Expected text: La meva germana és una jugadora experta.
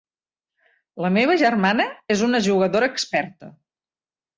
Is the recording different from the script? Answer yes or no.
no